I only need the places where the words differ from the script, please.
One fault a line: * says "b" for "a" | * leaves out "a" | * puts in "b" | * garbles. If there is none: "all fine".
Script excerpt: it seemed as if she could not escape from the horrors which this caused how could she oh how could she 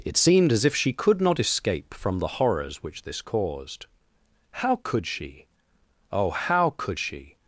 all fine